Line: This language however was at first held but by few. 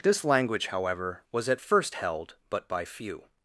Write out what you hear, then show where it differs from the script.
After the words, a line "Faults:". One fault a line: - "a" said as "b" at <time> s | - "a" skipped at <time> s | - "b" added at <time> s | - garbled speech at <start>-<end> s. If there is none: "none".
This language however was at first held but by few.
Faults:
none